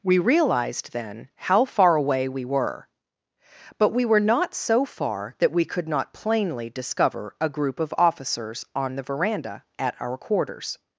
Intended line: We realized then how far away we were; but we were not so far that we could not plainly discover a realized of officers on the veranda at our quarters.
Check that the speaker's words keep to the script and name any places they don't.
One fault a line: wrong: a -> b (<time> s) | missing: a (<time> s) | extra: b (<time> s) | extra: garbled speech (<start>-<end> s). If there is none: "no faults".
wrong: realized -> group (7.5 s)